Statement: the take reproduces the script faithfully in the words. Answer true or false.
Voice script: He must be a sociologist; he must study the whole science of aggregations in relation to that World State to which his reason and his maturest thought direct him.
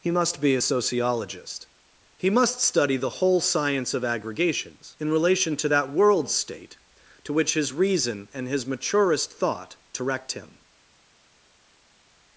true